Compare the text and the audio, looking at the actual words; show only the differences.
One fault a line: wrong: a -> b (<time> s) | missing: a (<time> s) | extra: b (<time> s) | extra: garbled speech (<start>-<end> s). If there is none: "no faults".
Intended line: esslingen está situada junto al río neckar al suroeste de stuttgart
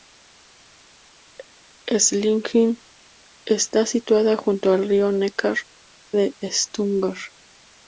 missing: al suroeste (5.6 s)